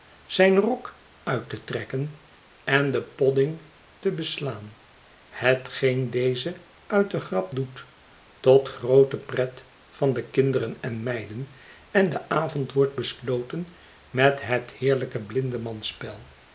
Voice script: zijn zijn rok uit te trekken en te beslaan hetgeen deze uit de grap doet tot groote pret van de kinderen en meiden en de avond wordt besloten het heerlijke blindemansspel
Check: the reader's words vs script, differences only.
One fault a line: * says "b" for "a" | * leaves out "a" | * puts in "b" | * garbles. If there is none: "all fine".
* leaves out "zijn"
* puts in "den podding"
* puts in "met"